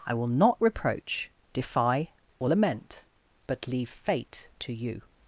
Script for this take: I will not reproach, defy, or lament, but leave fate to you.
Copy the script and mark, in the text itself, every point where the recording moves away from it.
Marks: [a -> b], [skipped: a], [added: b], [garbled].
I will not reproach, defy, or lament, but leave fate to you.